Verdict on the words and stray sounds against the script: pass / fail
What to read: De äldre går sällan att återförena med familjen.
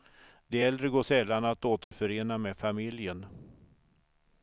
fail